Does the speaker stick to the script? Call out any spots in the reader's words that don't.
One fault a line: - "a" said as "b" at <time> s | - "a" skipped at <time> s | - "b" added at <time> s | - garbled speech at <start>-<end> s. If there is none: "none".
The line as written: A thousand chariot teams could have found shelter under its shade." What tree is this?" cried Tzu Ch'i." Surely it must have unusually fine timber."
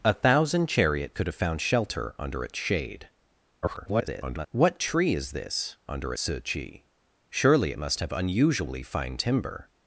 - "teams" skipped at 1.1 s
- garbled speech at 3.6-4.5 s
- "cried" said as "under" at 5.9 s